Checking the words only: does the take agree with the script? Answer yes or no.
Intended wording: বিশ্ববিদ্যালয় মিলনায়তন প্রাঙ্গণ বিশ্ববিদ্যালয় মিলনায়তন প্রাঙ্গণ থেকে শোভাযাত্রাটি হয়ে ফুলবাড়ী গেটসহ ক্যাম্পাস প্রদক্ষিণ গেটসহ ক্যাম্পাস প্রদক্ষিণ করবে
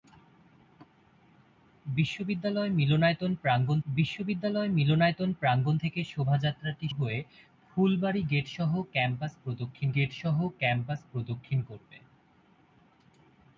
yes